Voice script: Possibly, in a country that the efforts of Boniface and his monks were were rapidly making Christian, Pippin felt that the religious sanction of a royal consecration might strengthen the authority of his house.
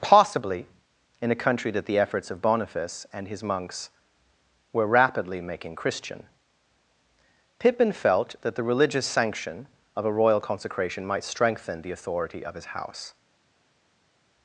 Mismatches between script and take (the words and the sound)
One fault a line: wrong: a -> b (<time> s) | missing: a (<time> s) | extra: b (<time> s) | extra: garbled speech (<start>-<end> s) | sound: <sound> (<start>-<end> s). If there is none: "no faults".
missing: were (4.9 s)